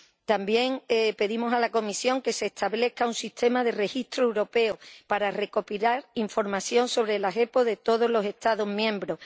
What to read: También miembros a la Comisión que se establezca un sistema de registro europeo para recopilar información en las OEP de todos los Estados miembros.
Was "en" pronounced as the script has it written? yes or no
no